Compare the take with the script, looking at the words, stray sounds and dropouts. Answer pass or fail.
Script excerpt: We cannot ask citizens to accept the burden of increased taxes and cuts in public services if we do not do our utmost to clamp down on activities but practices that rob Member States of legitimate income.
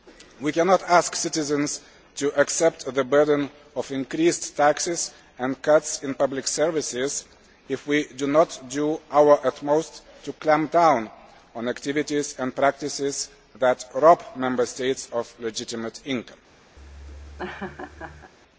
fail